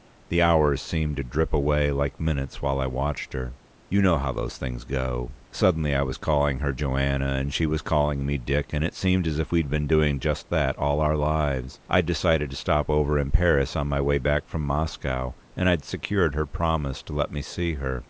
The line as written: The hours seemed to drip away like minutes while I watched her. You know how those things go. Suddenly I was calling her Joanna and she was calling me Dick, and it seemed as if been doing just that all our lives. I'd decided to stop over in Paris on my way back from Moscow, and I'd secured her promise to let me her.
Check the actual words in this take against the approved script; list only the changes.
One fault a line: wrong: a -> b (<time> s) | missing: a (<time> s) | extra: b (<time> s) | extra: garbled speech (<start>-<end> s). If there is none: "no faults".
extra: we'd (9.5 s)
extra: see (17.4 s)